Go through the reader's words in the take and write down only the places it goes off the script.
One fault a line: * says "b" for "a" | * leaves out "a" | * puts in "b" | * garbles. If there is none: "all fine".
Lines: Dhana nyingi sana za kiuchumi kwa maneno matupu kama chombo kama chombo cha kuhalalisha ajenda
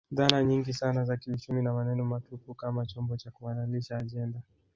* says "na" for "kwa"
* leaves out "kama chombo"